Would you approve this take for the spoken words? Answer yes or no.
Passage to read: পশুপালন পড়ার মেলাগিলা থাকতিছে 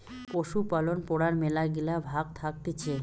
no